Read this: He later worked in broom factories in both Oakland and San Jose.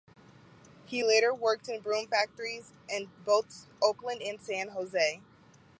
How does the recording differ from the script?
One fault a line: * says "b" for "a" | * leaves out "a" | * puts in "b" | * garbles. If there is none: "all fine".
all fine